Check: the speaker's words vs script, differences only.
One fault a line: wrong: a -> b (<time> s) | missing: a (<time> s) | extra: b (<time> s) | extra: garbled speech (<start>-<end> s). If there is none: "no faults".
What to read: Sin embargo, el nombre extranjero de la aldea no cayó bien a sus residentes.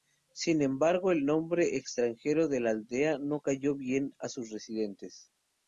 no faults